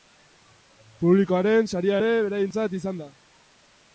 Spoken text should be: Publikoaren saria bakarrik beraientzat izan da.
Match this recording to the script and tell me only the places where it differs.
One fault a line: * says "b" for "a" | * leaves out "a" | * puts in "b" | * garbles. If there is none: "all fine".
* says "ere" for "bakarrik"